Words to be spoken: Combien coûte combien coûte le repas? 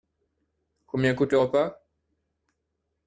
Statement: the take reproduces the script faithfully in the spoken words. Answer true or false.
false